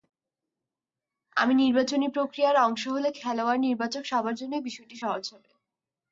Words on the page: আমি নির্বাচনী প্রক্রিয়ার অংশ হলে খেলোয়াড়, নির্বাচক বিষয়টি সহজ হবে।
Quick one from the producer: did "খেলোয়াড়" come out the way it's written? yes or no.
yes